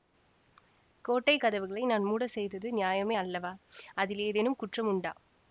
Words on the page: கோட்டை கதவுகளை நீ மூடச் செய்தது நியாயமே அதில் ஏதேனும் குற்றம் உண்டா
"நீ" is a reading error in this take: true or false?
true